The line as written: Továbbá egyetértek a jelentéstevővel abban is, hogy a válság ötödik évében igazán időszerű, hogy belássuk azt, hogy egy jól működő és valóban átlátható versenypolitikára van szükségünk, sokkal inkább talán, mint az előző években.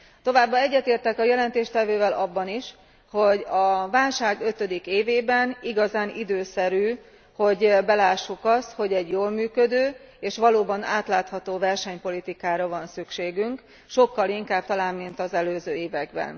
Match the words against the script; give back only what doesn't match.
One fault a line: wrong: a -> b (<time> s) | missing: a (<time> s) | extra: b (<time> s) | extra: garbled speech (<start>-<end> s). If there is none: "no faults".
no faults